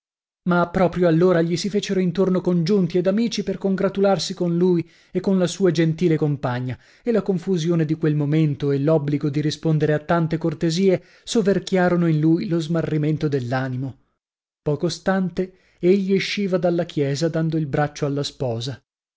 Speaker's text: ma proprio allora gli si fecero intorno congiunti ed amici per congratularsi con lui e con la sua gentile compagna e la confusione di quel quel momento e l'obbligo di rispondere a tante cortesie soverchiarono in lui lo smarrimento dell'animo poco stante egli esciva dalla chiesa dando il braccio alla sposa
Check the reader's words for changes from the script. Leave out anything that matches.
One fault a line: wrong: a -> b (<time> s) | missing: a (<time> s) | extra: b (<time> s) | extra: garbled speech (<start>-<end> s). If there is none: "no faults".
missing: quel (8.1 s)